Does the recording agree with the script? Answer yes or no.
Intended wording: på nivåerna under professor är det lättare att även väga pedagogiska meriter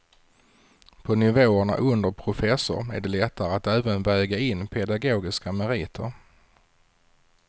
no